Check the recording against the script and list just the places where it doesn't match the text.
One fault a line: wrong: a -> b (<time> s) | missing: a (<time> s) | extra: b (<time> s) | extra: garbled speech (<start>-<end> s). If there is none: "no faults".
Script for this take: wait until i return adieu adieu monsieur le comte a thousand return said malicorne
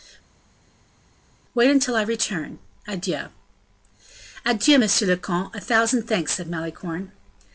wrong: return -> thanks (6.1 s)